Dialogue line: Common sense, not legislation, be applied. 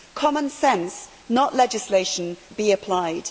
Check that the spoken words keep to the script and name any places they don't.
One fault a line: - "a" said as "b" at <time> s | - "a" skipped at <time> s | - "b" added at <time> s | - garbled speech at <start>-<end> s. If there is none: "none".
none